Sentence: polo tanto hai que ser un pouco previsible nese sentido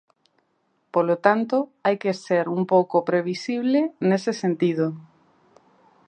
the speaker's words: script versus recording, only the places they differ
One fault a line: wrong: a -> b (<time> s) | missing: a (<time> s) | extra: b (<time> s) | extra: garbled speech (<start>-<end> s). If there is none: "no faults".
no faults